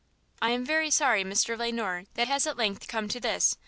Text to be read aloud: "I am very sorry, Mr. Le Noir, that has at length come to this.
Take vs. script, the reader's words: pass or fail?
pass